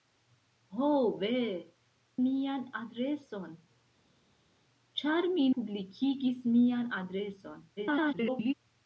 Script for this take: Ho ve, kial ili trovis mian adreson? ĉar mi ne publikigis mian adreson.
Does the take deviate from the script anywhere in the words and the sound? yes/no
yes